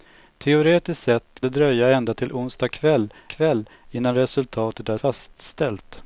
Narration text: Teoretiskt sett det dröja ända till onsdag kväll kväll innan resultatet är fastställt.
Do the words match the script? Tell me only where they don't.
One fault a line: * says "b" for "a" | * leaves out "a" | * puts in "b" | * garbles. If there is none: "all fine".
all fine